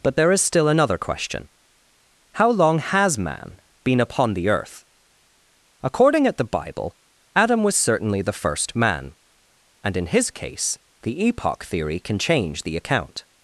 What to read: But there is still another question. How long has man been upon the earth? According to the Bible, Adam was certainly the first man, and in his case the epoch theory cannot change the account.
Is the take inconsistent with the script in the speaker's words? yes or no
yes